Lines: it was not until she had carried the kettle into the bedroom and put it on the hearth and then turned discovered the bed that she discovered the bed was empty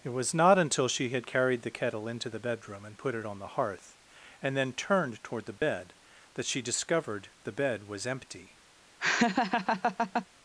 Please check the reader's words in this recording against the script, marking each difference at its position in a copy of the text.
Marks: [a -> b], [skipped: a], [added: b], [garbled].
it was not until she had carried the kettle into the bedroom and put it on the hearth and then turned [discovered -> toward] the bed that she discovered the bed was empty